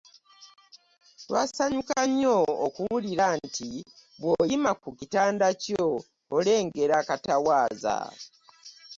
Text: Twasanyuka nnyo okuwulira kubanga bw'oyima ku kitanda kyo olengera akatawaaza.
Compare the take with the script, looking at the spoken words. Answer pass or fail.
fail